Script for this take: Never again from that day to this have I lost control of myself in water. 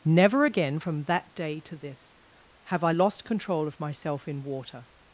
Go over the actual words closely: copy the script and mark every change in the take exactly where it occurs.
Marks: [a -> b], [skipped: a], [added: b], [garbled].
Never again from that day to this have I lost control of myself in water.